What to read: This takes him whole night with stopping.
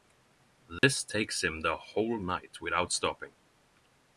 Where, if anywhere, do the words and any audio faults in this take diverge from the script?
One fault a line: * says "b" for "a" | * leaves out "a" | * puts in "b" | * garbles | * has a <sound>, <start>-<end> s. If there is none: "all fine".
* has a dropout, 0.8-0.8 s
* puts in "the"
* says "without" for "with"